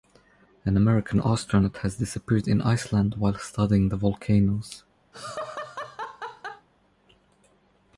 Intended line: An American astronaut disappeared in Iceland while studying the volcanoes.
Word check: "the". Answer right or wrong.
right